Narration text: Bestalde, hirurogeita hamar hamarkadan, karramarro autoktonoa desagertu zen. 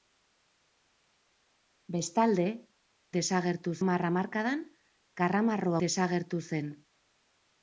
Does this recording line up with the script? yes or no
no